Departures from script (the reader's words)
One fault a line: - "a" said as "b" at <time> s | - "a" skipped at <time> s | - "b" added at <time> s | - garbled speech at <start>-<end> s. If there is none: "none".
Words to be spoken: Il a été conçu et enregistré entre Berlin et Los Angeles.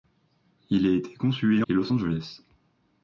- "enregistré entre Berlin" skipped at 1.6 s